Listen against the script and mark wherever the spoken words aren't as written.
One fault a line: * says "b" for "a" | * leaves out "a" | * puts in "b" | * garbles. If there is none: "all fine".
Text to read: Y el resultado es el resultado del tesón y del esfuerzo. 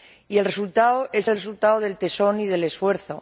all fine